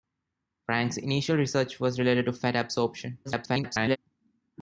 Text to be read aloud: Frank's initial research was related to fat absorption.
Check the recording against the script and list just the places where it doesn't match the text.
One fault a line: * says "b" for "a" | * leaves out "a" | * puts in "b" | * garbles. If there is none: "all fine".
* garbles